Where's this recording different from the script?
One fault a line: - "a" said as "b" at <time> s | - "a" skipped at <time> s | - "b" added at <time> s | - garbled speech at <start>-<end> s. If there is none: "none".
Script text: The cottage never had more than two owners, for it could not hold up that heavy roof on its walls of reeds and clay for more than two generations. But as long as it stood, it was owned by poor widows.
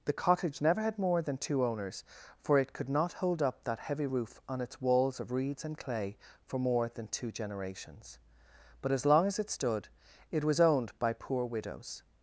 none